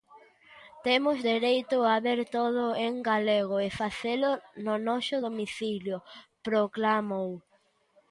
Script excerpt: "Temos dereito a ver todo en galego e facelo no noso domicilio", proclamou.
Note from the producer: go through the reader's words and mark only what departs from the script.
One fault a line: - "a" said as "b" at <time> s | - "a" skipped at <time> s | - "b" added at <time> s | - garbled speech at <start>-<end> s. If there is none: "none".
none